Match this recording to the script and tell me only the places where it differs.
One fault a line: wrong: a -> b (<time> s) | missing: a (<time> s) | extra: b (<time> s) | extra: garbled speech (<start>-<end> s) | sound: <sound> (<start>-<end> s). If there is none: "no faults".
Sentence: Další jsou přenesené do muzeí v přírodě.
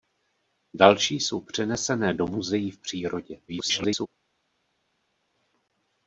extra: garbled speech (3.5-4.1 s)